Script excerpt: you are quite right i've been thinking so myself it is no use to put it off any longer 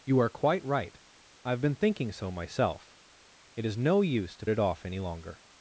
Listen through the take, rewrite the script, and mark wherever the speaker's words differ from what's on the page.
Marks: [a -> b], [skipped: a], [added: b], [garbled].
you are quite right i've been thinking so myself it is no use to [skipped: put] it off any longer